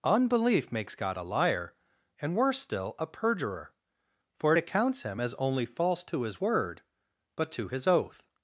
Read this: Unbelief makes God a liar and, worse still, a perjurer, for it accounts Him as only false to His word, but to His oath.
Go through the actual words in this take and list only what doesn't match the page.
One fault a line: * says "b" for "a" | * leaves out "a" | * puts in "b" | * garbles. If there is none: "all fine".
all fine